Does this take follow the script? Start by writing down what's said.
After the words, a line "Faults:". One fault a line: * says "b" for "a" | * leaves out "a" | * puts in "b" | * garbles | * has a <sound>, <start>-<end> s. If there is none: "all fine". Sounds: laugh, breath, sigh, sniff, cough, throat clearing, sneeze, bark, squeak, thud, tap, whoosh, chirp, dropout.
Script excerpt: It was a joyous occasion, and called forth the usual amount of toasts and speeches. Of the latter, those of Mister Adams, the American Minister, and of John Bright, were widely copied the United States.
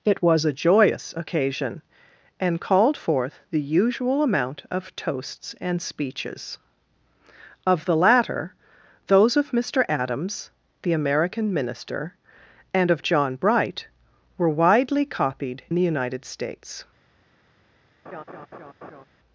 It was a joyous occasion, and called forth the usual amount of toasts and speeches. Of the latter, those of Mister Adams, the American Minister, and of John Bright, were widely copied the United States.
Faults:
* has a laugh, 18.1-19.0 s